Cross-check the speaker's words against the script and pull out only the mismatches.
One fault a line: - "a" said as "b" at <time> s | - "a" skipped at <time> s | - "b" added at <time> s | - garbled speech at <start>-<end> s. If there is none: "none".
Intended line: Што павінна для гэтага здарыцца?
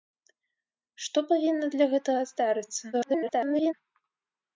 - garbled speech at 2.9-3.7 s